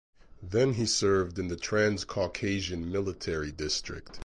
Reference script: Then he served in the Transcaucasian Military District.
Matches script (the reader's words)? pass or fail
pass